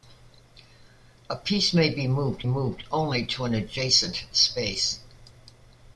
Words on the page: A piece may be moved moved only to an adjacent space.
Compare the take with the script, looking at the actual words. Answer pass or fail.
pass